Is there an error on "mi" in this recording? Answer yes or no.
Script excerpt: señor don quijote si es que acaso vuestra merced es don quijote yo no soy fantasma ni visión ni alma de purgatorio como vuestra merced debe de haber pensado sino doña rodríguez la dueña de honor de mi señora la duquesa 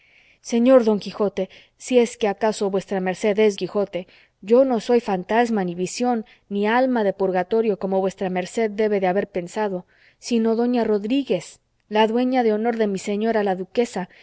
no